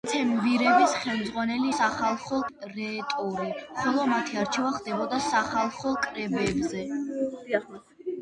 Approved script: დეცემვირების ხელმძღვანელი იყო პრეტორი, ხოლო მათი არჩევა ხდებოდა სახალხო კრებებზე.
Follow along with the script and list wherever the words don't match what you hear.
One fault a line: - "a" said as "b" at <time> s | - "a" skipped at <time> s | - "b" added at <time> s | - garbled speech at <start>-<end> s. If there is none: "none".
- "იყო" said as "სახალხო" at 1.7 s